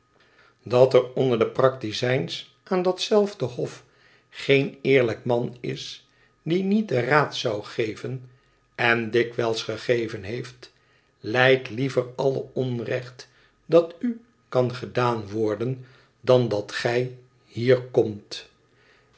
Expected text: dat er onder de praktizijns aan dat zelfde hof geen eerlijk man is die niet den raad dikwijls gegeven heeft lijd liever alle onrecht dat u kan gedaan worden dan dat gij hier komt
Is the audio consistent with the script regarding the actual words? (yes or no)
no